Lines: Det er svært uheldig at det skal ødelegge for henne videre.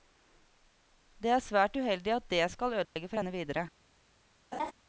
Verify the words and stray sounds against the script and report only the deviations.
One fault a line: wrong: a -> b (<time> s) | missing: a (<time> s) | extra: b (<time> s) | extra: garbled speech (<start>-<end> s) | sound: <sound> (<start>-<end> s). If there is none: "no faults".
sound: dropout (2.8-3.0 s)
sound: laugh (4.5-4.7 s)